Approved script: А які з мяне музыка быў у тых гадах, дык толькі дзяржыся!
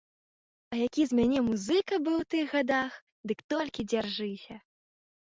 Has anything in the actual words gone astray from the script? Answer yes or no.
no